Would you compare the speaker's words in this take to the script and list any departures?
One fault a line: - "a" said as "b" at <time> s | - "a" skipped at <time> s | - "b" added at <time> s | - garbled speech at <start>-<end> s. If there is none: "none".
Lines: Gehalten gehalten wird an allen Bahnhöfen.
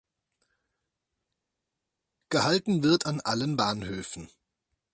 - "gehalten" skipped at 2.8 s